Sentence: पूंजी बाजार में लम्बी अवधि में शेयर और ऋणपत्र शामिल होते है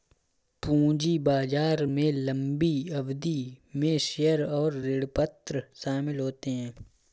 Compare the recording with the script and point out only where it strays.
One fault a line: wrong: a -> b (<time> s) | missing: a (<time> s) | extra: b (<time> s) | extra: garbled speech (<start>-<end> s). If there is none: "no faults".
no faults